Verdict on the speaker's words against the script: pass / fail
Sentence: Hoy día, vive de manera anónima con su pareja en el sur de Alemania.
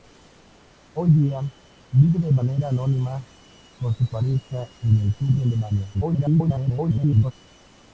fail